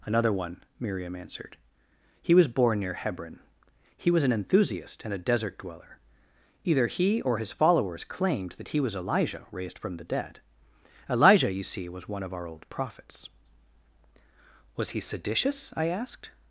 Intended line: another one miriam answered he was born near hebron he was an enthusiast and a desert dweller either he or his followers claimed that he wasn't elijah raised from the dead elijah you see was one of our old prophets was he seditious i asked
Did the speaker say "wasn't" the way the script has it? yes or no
no